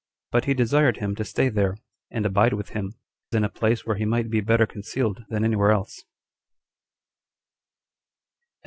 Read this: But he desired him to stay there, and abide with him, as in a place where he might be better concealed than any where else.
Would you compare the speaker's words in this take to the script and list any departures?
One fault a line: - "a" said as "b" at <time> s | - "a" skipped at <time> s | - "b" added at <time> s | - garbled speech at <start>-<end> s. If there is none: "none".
- "as" skipped at 2.9 s